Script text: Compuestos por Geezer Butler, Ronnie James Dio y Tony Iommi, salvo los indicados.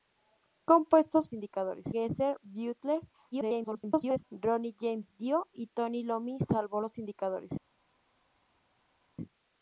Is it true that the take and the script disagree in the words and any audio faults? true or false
true